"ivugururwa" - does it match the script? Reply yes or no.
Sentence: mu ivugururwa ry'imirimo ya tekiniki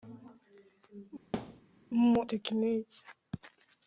no